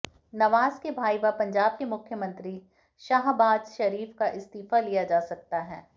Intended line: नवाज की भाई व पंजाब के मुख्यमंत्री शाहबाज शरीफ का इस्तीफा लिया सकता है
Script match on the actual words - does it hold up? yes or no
no